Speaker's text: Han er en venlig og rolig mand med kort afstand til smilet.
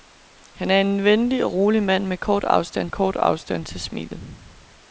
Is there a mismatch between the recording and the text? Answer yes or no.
yes